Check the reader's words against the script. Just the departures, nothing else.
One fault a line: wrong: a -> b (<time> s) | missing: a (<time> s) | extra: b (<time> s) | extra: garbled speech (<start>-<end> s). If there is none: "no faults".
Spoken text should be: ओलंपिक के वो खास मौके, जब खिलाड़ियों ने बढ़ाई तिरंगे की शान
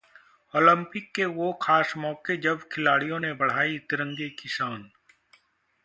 no faults